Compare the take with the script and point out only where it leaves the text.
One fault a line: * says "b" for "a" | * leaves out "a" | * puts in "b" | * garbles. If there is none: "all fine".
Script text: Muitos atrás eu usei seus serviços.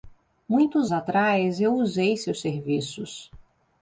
all fine